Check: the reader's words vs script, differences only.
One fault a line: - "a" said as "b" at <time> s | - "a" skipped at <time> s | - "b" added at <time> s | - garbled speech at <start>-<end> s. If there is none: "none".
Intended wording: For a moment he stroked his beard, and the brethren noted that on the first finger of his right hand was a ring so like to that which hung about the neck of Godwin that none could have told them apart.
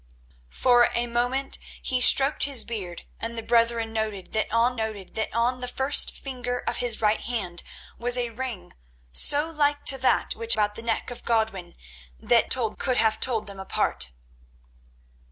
- "noted that on" added at 4.8 s
- "hung" skipped at 10.6 s
- "none" said as "told" at 12.5 s